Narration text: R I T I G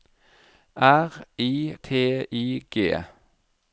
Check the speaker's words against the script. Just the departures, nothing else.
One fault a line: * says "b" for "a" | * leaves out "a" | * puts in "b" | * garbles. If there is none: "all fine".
all fine